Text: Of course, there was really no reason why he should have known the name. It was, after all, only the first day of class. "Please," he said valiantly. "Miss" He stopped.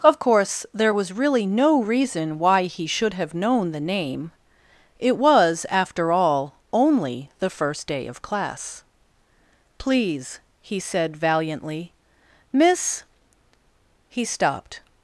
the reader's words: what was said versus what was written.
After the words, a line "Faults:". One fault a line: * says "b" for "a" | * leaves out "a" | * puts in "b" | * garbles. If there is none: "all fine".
Of course, there was really no reason why he should have known the name. It was, after all, only the first day of class. "Please," he said valiantly. "Miss" He stopped.
Faults:
all fine